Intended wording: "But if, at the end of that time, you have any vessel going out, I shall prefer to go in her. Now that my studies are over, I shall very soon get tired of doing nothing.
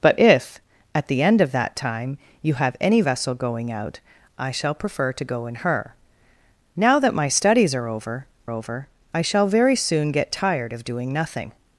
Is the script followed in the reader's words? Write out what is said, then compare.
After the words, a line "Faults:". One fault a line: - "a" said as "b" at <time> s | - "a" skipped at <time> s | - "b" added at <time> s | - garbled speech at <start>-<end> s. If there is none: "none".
"But if, at the end of that time, you have any vessel going out, I shall prefer to go in her. Now that my studies are over over, I shall very soon get tired of doing nothing.
Faults:
- "over" added at 8.5 s